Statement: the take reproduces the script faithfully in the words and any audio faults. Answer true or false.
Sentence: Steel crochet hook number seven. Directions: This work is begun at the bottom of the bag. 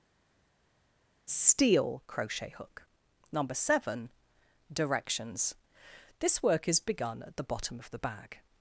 true